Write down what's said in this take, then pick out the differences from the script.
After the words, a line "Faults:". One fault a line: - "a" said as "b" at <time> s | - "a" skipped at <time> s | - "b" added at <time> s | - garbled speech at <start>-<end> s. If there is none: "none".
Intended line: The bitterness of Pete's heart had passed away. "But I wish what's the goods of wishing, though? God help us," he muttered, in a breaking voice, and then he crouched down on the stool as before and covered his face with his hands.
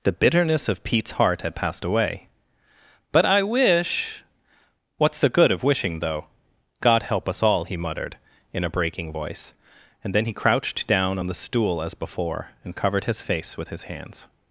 The bitterness of Pete's heart had passed away. "But I wish what's the good of wishing, though? God help us all," he muttered, in a breaking voice, and then he crouched down on the stool as before and covered his face with his hands.
Faults:
- "goods" said as "good" at 5.3 s
- "all" added at 7.4 s